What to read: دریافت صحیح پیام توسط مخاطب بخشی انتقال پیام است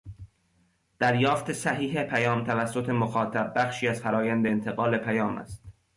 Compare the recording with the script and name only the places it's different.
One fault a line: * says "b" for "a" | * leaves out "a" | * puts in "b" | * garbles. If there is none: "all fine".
* puts in "از فرآیند"